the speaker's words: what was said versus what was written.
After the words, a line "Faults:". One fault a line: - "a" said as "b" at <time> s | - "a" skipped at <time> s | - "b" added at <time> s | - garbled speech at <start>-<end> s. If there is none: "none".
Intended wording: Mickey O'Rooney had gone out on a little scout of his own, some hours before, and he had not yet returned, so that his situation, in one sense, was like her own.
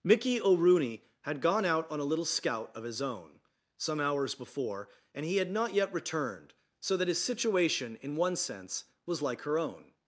Mickey O'Rooney had gone out on a little scout of his own, some hours before, and he had not yet returned, so that his situation, in one sense, was like her own.
Faults:
none